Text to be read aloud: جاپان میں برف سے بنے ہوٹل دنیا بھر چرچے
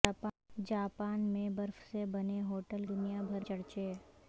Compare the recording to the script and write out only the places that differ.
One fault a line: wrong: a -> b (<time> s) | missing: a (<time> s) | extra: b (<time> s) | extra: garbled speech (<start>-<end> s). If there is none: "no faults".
no faults